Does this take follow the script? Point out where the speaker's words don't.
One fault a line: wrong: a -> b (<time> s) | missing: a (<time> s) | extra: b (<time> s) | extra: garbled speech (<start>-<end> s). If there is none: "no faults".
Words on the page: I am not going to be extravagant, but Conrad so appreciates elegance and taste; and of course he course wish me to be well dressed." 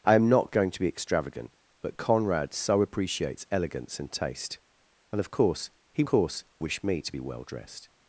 no faults